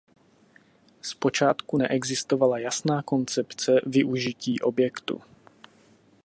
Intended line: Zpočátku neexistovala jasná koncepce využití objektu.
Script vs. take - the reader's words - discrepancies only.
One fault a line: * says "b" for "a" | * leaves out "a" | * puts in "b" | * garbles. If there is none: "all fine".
all fine